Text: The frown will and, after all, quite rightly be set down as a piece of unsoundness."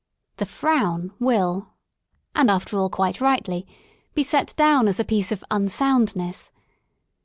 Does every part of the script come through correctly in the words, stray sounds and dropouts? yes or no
yes